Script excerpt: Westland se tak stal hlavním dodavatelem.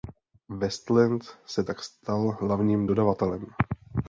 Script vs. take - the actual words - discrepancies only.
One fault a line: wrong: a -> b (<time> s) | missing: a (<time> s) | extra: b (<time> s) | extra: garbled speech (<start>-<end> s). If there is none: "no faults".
no faults